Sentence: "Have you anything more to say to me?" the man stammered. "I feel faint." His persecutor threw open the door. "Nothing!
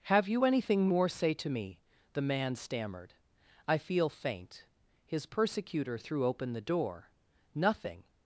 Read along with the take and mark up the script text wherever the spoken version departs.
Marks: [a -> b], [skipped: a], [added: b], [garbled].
"Have you anything more [skipped: to] say to me?" the man stammered. "I feel faint." His persecutor threw open the door. "Nothing!